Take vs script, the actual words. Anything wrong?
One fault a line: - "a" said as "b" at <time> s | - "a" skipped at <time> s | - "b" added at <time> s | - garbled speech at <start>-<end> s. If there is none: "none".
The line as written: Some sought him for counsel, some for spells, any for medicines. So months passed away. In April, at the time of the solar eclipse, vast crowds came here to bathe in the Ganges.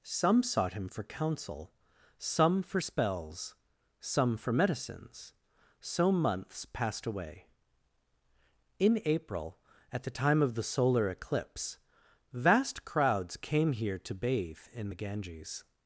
- "any" said as "some" at 4.0 s